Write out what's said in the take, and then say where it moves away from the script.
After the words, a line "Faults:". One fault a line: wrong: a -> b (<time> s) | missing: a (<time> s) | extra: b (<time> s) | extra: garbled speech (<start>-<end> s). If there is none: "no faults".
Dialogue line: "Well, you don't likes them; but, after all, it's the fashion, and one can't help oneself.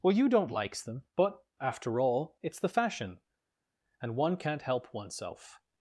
"Well, you don't likes them; but, after all, it's the fashion, and one can't help oneself.
Faults:
no faults